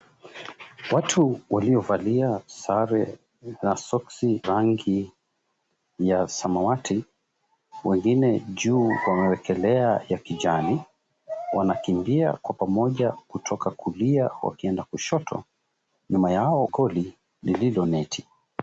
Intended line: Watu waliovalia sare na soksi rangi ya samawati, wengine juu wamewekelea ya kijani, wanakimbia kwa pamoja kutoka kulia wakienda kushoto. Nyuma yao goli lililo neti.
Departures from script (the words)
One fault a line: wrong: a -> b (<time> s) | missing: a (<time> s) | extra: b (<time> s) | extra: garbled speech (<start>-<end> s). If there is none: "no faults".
no faults